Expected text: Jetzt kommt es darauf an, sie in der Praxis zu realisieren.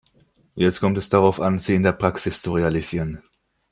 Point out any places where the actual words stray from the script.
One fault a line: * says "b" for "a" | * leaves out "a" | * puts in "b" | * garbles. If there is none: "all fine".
all fine